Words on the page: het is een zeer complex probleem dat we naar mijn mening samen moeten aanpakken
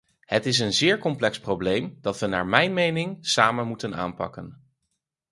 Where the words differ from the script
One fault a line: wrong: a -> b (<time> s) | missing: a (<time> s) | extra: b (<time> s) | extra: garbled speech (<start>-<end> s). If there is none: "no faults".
no faults